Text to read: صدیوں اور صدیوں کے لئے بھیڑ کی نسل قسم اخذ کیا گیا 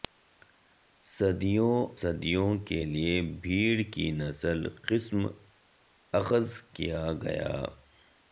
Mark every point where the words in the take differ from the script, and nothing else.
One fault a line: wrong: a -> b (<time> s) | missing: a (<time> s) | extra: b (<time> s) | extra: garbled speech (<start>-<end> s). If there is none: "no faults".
missing: اور (1.8 s)